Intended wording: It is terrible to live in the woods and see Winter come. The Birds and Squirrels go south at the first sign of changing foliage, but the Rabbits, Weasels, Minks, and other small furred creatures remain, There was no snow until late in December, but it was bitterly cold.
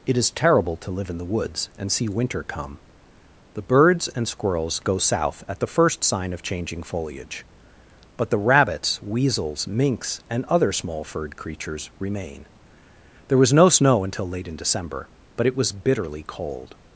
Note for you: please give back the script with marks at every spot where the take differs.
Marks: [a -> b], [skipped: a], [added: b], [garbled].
It is terrible to live in the woods and see Winter come. The Birds and Squirrels go south at the first sign of changing foliage, but the Rabbits, Weasels, Minks, and other small furred creatures remain, There was no snow until late in December, but it was bitterly cold.